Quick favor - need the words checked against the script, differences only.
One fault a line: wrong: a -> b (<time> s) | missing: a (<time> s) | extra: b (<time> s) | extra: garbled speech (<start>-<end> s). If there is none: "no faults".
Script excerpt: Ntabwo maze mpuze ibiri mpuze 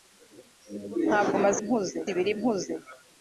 no faults